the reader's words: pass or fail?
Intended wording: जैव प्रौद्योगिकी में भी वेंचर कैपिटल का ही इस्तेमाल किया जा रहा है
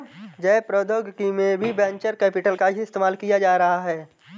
pass